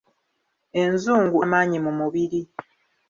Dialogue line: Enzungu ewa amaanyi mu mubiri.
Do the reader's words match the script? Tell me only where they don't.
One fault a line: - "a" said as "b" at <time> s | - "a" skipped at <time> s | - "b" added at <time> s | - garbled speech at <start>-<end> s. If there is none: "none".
- "ewa" skipped at 1.4 s